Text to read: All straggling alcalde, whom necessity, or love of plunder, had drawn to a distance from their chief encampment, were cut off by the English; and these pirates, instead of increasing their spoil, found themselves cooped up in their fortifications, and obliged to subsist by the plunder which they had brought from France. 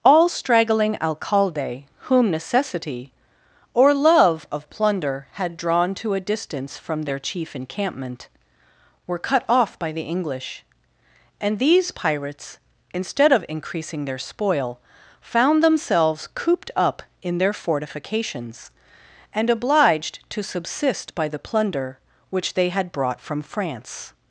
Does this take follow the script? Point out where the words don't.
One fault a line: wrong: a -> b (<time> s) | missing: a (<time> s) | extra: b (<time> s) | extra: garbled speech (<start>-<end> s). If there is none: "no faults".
no faults